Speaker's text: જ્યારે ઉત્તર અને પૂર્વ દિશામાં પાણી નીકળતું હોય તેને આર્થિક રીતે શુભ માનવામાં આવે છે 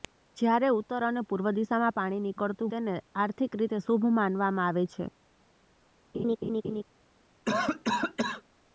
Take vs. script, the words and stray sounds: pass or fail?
fail